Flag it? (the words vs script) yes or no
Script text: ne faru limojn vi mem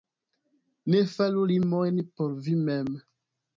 yes